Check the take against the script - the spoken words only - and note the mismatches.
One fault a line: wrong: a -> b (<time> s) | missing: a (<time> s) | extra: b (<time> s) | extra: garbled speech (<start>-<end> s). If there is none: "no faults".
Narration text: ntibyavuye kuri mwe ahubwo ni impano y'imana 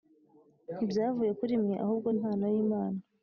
missing: ni (2.1 s)